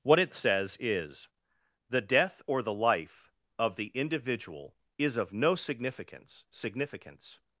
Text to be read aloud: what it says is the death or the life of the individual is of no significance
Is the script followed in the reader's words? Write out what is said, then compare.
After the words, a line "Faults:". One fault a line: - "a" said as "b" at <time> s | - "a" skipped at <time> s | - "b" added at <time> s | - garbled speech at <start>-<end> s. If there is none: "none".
what it says is the death or the life of the individual is of no significance significance
Faults:
- "significance" added at 6.5 s